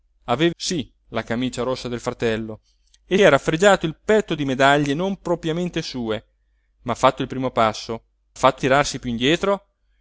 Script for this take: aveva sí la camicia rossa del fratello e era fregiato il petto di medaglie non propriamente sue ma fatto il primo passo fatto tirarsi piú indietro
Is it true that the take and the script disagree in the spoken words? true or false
false